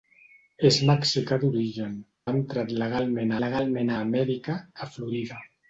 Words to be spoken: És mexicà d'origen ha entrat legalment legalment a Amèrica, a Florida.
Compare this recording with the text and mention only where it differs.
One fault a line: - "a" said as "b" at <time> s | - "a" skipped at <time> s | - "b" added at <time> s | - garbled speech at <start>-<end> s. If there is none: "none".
none